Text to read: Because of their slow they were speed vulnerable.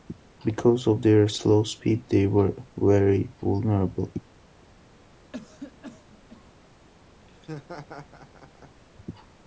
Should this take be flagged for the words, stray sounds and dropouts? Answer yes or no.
yes